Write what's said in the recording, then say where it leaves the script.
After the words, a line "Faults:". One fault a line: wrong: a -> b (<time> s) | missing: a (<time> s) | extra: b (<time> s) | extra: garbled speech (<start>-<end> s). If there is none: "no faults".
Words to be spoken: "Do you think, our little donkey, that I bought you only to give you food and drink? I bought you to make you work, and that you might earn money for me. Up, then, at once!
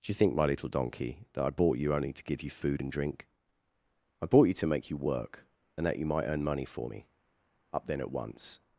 "Do you think, my little donkey, that I bought you only to give you food and drink? I bought you to make you work, and that you might earn money for me. Up, then, at once!
Faults:
wrong: our -> my (0.3 s)